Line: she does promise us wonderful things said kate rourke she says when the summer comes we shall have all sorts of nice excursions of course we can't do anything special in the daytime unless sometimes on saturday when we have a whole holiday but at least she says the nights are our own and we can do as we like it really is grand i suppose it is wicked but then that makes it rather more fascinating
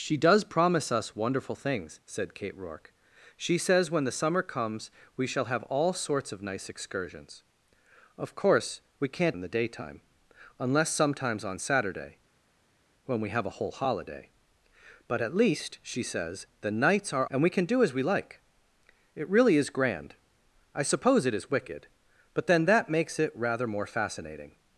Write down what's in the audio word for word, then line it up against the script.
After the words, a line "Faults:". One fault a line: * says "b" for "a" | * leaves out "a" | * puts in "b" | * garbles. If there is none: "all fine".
she does promise us wonderful things said kate rourke she says when the summer comes we shall have all sorts of nice excursions of course we can't in the daytime unless sometimes on saturday when we have a whole holiday but at least she says the nights are and we can do as we like it really is grand i suppose it is wicked but then that makes it rather more fascinating
Faults:
* leaves out "do anything special"
* leaves out "our own"